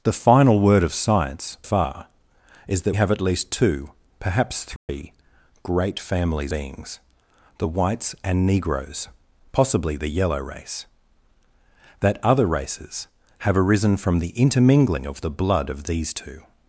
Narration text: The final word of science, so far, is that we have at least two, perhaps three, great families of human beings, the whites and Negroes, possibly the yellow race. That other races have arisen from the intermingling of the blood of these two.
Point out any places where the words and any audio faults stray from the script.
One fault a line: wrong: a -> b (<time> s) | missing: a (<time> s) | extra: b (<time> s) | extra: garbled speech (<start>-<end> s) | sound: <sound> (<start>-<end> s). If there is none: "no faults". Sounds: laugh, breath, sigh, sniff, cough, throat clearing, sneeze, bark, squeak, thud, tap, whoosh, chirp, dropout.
missing: so (1.6 s)
missing: we (3.0 s)
sound: dropout (4.8-4.9 s)
missing: of human (6.5 s)